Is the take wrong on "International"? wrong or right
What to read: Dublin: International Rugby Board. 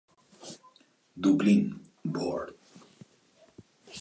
wrong